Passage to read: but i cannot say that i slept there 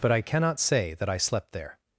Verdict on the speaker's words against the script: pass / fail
pass